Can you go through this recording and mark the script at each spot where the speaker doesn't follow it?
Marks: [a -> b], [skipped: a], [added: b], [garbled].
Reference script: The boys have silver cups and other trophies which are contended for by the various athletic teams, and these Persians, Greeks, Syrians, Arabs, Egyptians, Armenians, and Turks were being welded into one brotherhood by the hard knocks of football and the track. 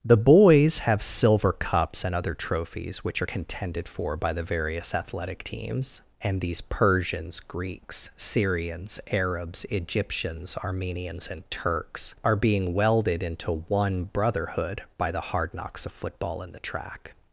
The boys have silver cups and other trophies which are contended for by the various athletic teams, and these Persians, Greeks, Syrians, Arabs, Egyptians, Armenians, and Turks [were -> are] being welded into one brotherhood by the hard knocks of football and the track.